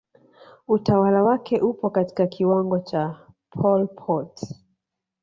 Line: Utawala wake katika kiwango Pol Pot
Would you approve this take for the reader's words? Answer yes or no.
no